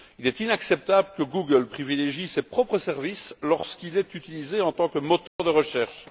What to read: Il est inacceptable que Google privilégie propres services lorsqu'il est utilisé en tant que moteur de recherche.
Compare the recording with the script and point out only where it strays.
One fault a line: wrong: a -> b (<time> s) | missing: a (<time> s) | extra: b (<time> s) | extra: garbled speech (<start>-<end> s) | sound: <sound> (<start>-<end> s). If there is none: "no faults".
extra: ses (2.3 s)
sound: dropout (5.3-5.4 s)